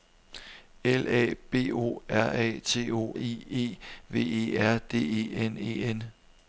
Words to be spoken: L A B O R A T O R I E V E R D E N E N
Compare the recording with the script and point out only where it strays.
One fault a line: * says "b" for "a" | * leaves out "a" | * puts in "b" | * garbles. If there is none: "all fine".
* leaves out "R"